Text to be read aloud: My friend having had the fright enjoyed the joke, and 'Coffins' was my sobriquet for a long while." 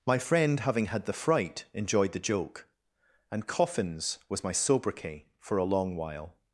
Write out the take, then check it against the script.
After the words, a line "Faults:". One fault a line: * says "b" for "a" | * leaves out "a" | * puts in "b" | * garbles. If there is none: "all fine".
My friend having had the fright enjoyed the joke, and 'Coffins' was my sobriquet for a long while."
Faults:
all fine